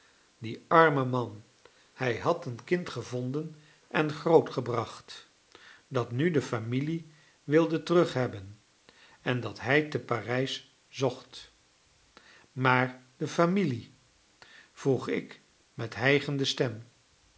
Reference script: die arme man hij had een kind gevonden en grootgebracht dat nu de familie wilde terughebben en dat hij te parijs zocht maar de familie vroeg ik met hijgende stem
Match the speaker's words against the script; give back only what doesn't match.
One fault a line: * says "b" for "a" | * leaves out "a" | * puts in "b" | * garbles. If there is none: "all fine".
all fine